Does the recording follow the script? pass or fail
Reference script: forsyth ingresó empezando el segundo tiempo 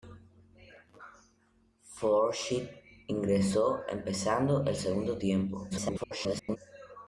fail